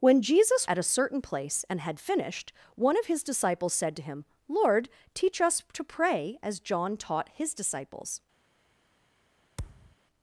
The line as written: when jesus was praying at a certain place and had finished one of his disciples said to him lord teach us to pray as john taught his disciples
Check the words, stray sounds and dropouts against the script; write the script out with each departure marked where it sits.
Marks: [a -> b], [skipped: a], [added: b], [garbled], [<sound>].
when jesus [skipped: was praying] at a certain place and had finished one of his disciples said to him lord teach us to pray as john taught his disciples [thud]